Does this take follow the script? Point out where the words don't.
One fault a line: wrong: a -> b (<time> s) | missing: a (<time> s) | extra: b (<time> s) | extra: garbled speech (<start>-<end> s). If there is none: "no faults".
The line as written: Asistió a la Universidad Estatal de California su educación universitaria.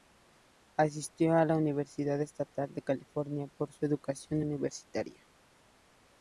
extra: por (3.5 s)